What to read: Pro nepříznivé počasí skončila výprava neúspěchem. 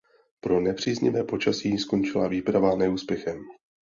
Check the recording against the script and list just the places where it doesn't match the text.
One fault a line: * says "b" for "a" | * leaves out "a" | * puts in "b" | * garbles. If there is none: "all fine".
all fine